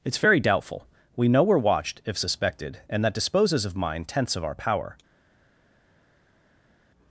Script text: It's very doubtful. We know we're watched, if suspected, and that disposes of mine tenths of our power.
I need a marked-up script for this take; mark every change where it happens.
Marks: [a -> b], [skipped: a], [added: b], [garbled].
It's very doubtful. We know we're watched, if suspected, and that disposes of mine tenths of our power.